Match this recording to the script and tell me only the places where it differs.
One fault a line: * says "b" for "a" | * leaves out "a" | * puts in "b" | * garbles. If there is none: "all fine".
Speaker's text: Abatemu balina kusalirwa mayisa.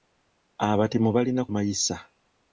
* leaves out "kusalirwa"